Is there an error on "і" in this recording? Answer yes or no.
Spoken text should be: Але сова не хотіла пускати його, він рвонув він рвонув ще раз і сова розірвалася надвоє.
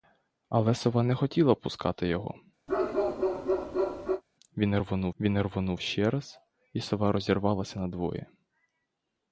no